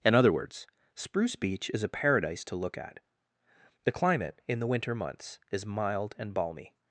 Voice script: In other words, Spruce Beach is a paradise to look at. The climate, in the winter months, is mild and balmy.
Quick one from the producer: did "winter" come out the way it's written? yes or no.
yes